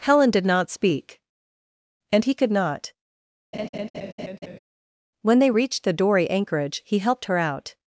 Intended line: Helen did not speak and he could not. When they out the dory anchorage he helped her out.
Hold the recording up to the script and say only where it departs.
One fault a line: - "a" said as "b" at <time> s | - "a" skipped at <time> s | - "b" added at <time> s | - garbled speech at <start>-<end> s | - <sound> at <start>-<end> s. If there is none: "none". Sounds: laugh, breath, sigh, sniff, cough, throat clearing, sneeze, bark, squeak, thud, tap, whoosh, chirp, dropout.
- laugh at 3.5-4.6 s
- "out" said as "reached" at 5.5 s